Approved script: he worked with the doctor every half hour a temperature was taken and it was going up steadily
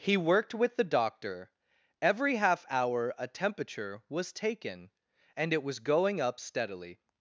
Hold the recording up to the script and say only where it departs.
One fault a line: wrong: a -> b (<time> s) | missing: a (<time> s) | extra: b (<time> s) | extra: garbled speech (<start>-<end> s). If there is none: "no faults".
no faults